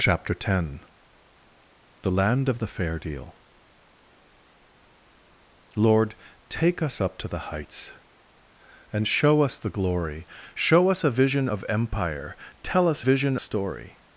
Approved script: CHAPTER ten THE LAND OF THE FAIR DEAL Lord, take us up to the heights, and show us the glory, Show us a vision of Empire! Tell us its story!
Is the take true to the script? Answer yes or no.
no